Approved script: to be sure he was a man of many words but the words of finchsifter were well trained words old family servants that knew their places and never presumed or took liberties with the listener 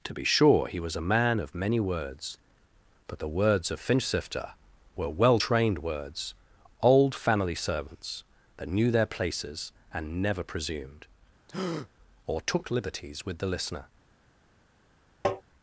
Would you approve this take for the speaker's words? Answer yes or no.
yes